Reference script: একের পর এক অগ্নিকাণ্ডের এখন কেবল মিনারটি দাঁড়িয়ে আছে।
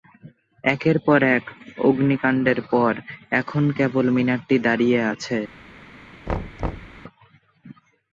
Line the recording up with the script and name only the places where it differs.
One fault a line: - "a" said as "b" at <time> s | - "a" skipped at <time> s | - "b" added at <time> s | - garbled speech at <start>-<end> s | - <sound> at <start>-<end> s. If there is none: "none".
- "পর" added at 2.7 s
- thud at 6.3-7.0 s